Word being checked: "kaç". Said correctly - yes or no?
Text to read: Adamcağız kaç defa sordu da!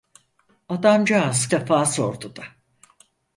no